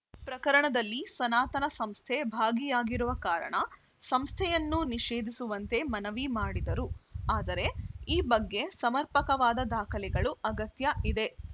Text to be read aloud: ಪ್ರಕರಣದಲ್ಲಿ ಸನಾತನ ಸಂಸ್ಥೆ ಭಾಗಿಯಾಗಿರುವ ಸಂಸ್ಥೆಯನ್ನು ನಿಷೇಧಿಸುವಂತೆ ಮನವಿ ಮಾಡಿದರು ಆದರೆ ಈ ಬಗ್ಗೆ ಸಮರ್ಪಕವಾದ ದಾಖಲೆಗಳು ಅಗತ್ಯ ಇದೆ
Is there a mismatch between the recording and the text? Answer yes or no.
yes